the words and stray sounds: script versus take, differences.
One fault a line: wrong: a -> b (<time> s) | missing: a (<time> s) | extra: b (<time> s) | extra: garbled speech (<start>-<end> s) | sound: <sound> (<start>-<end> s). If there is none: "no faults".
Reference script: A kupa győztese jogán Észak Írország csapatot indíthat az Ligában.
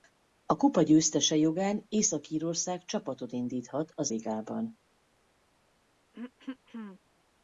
sound: throat clearing (6.1-7.0 s)